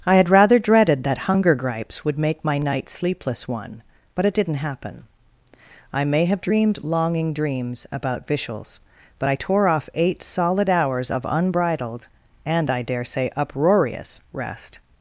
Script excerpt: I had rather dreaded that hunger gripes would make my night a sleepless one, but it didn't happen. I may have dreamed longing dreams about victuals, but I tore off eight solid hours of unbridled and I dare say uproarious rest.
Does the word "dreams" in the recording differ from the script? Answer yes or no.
no